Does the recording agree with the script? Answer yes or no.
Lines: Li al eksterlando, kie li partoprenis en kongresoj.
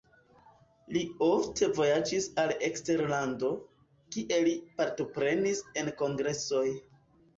no